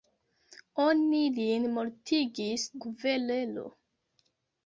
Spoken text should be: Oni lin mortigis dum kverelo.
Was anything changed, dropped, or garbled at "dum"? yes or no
yes